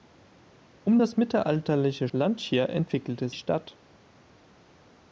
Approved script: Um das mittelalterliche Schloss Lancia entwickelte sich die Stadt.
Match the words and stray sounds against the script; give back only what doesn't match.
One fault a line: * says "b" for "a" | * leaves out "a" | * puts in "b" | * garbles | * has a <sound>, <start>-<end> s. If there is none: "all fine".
* leaves out "Schloss"
* leaves out "sich die"